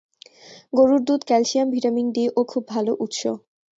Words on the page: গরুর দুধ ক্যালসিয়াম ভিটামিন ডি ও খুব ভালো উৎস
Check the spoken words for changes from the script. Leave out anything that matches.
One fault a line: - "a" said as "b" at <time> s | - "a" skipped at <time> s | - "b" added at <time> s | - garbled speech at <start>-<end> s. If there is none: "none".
none